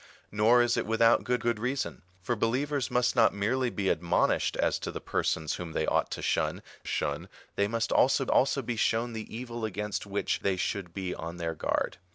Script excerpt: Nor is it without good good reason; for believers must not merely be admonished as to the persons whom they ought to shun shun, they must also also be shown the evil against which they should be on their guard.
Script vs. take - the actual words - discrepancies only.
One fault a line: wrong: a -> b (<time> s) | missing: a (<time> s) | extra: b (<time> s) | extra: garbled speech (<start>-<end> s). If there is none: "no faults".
no faults